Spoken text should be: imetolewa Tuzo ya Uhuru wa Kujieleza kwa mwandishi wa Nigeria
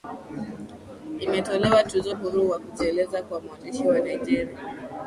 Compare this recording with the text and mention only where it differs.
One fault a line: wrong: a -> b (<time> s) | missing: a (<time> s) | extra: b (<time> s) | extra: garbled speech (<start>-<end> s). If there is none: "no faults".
missing: ya (2.1 s)